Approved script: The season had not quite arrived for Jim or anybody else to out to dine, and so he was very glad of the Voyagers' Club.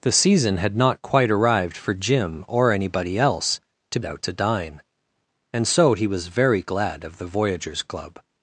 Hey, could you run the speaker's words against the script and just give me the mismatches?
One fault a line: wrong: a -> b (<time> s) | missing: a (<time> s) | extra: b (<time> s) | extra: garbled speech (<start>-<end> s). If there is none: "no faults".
no faults